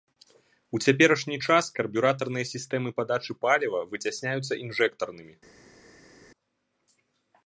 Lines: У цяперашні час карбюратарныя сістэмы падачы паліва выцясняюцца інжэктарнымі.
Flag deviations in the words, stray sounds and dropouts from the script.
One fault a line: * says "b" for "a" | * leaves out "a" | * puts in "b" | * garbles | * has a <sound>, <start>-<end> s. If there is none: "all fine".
all fine